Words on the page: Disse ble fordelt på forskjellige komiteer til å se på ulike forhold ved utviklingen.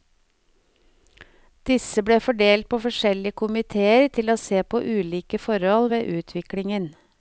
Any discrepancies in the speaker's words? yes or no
no